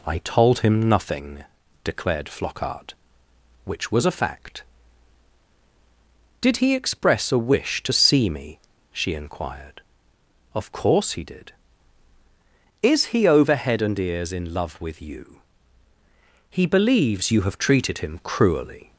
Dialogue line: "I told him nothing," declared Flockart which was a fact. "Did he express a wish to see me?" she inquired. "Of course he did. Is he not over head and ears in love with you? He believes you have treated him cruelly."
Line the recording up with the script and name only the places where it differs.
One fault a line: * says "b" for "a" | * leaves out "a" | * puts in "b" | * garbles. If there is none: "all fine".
* leaves out "not"